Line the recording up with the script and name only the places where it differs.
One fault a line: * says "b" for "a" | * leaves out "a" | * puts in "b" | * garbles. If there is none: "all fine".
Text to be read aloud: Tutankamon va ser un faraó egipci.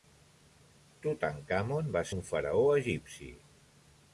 * leaves out "ser"